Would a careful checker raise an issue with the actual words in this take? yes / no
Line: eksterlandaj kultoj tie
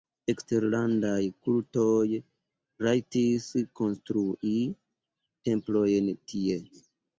yes